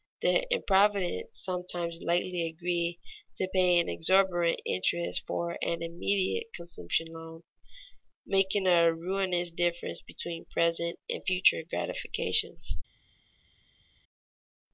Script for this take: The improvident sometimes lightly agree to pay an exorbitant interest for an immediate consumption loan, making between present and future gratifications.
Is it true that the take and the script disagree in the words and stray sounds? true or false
true